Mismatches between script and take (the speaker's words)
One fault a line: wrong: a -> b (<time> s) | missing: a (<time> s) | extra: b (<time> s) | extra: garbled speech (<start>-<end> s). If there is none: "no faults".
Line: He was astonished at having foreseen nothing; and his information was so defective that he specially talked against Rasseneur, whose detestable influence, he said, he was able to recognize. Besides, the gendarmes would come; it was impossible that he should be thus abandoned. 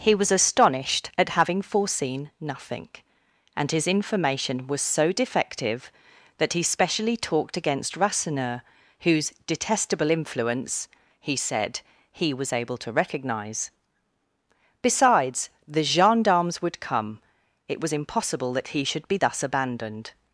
no faults